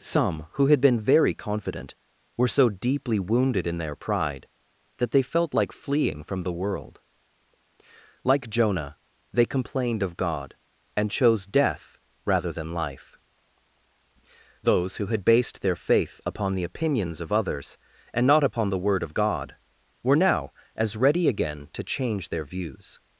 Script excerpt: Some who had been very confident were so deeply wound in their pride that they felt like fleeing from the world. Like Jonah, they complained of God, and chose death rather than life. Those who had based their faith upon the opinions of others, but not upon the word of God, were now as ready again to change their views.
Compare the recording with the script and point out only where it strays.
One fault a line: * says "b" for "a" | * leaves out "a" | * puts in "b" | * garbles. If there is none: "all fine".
* says "wounded" for "wound"
* says "and" for "but"